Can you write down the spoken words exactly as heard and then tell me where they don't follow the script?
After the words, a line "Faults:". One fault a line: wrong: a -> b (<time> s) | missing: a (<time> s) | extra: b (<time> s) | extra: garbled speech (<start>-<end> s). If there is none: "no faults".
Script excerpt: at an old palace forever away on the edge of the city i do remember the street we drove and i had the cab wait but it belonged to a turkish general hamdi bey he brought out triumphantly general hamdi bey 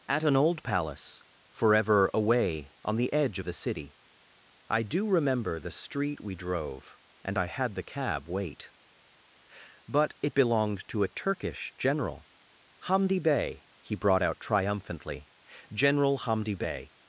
at an old palace forever away on the edge of the city i do remember the street we drove and i had the cab wait but it belonged to a turkish general hamdi bey he brought out triumphantly general hamdi bey
Faults:
no faults